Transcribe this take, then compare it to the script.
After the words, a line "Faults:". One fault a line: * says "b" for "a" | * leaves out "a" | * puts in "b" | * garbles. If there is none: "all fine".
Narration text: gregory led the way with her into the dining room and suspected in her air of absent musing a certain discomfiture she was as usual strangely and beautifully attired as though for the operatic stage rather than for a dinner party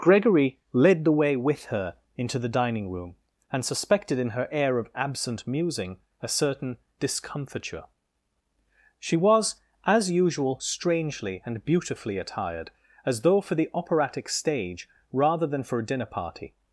gregory led the way with her into the dining room and suspected in her air of absent musing a certain discomfiture she was as usual strangely and beautifully attired as though for the operatic stage rather than for a dinner party
Faults:
all fine